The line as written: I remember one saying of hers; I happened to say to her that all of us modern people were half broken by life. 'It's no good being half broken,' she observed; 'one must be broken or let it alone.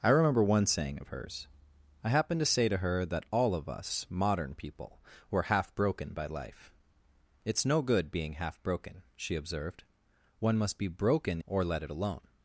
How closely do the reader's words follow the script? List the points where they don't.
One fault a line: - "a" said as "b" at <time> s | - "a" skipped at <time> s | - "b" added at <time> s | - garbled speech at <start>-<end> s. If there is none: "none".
none